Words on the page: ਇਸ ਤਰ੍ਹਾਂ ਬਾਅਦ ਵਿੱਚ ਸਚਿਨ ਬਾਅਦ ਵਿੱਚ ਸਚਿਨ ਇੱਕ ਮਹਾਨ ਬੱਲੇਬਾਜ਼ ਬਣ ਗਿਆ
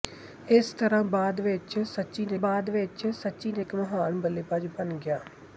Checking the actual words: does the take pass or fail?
pass